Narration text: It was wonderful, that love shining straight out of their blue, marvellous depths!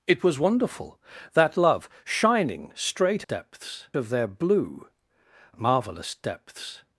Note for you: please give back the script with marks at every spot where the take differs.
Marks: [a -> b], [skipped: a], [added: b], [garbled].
It was wonderful, that love shining straight [out -> depths] of their blue, marvellous depths!